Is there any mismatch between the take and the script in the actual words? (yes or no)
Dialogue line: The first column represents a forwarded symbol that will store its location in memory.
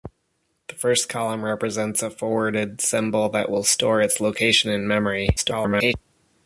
yes